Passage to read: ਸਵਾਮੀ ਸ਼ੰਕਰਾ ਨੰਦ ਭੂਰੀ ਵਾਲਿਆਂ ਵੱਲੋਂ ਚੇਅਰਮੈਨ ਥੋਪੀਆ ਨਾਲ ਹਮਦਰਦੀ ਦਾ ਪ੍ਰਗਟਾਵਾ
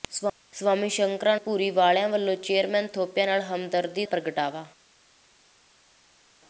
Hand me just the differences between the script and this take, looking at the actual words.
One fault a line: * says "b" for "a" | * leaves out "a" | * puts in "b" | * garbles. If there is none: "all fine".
* leaves out "ਨੰਦ"
* leaves out "ਦਾ"